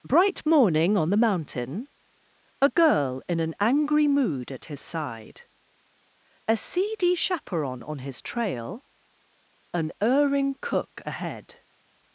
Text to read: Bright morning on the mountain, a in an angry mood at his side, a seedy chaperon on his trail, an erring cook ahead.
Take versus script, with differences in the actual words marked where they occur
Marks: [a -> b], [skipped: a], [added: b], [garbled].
Bright morning on the mountain, a [added: girl] in an angry mood at his side, a seedy chaperon on his trail, an erring cook ahead.